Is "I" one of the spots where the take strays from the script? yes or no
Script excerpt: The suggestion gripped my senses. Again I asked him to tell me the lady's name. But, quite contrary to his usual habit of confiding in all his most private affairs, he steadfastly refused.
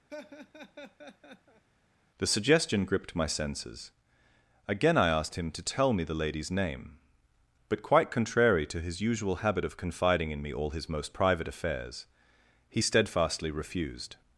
no